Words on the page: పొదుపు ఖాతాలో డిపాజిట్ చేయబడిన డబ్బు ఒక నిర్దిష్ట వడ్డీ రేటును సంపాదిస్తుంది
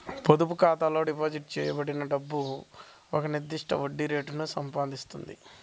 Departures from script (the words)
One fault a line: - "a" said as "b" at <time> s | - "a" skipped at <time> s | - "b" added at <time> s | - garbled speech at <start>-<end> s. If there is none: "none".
none